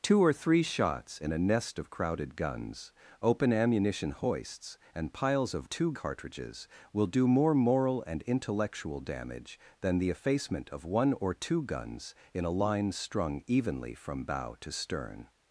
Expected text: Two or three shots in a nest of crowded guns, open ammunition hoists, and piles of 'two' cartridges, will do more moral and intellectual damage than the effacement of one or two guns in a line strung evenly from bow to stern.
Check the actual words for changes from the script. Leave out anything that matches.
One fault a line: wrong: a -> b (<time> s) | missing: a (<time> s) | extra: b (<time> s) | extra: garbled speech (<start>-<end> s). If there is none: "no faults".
no faults